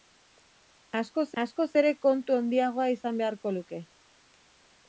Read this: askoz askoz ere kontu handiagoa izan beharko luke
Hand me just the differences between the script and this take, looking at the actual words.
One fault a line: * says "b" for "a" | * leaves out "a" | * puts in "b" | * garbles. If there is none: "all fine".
all fine